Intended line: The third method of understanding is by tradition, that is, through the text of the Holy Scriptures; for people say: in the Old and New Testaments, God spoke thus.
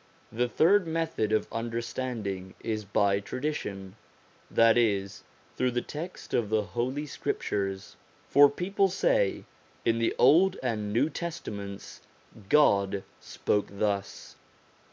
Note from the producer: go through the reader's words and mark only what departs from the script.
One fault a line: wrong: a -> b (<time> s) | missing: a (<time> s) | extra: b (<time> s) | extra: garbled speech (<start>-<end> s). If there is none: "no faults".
no faults